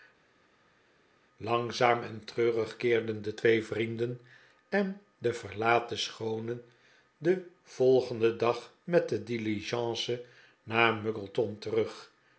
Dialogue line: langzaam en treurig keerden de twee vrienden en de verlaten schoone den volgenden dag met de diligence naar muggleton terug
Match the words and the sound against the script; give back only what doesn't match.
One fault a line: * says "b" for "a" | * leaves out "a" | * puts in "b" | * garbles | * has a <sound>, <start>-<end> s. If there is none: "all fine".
all fine